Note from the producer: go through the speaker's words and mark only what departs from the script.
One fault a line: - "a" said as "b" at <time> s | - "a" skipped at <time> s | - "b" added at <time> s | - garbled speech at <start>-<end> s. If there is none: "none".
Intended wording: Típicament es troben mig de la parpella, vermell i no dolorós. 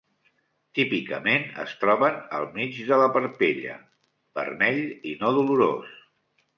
- "al" added at 2.4 s